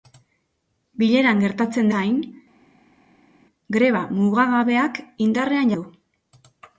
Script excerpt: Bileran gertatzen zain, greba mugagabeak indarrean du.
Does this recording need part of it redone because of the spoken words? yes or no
no